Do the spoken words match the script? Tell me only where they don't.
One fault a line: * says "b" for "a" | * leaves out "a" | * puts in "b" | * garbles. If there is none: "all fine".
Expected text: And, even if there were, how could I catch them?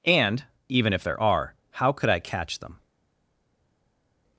* says "are" for "were"